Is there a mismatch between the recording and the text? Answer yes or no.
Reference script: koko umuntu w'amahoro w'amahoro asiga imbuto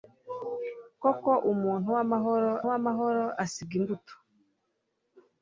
no